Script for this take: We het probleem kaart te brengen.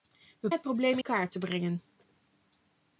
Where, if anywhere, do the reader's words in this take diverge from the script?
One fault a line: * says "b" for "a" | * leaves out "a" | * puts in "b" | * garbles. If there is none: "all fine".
all fine